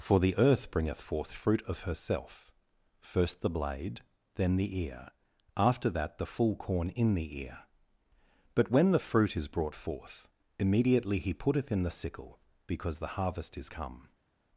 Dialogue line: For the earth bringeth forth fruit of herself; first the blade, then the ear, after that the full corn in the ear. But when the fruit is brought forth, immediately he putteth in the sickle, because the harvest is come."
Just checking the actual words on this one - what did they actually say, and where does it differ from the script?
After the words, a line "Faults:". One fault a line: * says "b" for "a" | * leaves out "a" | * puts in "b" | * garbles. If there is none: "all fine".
For the earth bringeth forth fruit of herself; first the blade, then the ear, after that the full corn in the ear. But when the fruit is brought forth, immediately he putteth in the sickle, because the harvest is come."
Faults:
all fine